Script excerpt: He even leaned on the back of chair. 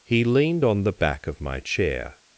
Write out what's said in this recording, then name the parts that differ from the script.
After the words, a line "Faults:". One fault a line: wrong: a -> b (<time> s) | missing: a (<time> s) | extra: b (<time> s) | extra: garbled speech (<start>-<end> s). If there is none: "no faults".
He leaned on the back of my chair.
Faults:
missing: even (0.2 s)
extra: my (1.4 s)